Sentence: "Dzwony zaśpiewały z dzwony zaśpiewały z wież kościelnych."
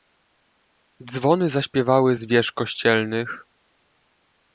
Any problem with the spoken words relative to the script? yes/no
yes